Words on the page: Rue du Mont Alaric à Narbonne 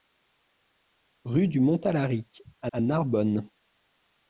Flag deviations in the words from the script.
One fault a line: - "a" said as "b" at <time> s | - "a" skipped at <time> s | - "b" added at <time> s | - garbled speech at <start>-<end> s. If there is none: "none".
- "à" added at 2.7 s